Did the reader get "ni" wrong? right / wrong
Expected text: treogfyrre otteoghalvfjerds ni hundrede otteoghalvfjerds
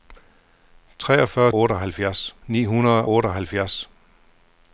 right